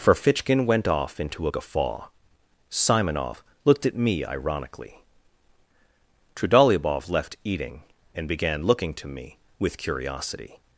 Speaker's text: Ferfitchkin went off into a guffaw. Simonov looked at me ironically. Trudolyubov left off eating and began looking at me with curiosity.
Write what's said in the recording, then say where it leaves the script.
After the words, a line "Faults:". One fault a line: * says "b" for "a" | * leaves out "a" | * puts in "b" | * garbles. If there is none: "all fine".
Ferfitchkin went off into a guffaw. Simonov looked at me ironically. Trudolyubov left eating and began looking to me with curiosity.
Faults:
* leaves out "off"
* says "to" for "at"